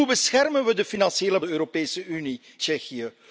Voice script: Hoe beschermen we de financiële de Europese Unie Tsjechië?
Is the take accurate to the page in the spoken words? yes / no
yes